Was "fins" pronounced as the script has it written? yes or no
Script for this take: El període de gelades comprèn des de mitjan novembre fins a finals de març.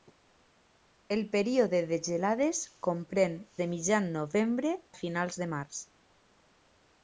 no